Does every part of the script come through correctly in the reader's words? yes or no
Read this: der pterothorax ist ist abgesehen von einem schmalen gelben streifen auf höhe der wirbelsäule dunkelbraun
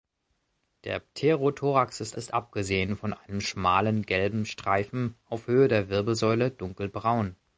yes